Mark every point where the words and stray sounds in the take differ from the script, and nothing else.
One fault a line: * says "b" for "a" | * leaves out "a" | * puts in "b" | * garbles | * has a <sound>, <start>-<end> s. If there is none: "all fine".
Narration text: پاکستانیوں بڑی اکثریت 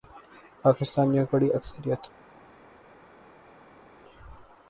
all fine